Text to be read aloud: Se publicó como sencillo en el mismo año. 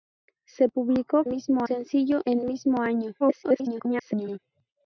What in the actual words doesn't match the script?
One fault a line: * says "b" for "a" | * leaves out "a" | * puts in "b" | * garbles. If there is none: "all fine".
* says "mismo" for "como"
* leaves out "el"
* garbles